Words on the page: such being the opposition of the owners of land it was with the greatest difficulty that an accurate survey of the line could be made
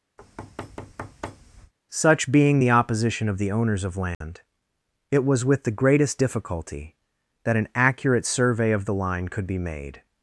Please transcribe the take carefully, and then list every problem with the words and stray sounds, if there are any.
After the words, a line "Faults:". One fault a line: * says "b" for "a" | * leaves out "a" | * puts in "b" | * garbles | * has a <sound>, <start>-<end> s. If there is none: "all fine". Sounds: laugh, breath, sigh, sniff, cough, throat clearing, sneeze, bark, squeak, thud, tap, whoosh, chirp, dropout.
such being the opposition of the owners of land it was with the greatest difficulty that an accurate survey of the line could be made
Faults:
* has a thud, 0.2-1.7 s
* has a dropout, 4.1-4.2 s